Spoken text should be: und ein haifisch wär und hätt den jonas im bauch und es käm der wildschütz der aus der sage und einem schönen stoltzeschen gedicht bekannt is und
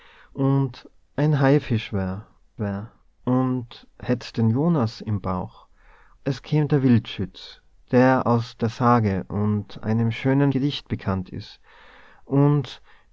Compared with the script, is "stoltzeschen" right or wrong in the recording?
wrong